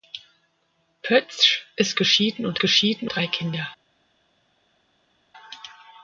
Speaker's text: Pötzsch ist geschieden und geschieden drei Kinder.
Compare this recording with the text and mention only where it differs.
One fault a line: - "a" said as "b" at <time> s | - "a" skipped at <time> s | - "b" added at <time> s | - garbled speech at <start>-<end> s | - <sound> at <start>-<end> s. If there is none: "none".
none